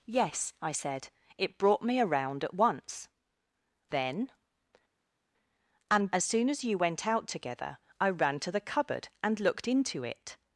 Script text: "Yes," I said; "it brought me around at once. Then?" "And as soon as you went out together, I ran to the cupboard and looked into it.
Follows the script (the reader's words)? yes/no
yes